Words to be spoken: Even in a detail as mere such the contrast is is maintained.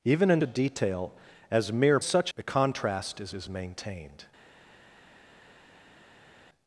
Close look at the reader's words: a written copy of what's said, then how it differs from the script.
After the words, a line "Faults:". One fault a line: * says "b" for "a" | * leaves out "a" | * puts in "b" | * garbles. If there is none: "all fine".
Even in a detail as mere such the contrast is is maintained.
Faults:
all fine